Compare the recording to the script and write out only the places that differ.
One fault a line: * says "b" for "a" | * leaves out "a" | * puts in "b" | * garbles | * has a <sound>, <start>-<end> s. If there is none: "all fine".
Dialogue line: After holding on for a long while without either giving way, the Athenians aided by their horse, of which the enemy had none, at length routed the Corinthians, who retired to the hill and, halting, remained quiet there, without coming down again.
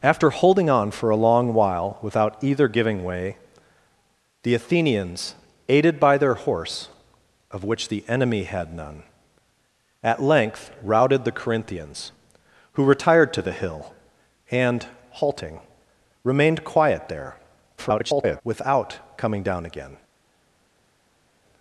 * garbles